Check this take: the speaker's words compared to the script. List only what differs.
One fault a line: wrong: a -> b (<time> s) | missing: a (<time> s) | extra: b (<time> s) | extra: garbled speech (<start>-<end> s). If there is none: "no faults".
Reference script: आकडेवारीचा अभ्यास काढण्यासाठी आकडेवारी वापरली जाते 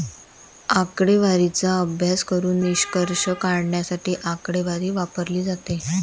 extra: करून निष्कर्ष (2.2 s)